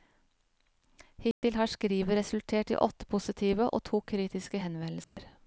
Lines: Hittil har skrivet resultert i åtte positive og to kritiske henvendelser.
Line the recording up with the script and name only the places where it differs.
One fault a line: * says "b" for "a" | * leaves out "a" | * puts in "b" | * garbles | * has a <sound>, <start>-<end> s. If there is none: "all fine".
* has a dropout, 1.3-1.4 s
* has a dropout, 5.0-5.2 s